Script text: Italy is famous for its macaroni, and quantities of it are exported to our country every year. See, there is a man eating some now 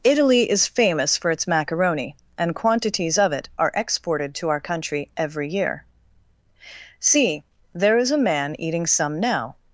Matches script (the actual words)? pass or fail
pass